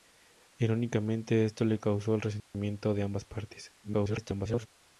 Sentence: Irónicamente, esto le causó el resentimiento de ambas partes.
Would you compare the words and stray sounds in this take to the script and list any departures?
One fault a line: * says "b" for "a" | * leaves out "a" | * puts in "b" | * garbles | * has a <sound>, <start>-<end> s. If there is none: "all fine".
* has a dropout, 2.4-2.5 s
* garbles